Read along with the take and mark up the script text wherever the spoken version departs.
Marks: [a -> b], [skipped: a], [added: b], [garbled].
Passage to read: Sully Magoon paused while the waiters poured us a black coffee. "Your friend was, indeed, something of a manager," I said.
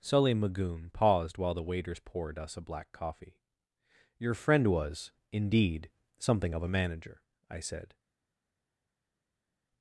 Sully Magoon paused while the waiters poured us a black coffee. "Your friend was, indeed, something of a manager," I said.